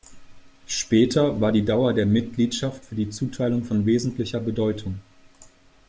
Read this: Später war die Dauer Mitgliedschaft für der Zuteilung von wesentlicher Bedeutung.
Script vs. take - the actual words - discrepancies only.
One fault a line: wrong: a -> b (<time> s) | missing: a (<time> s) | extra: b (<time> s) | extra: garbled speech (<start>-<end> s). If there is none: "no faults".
extra: der (1.9 s)
wrong: der -> die (2.9 s)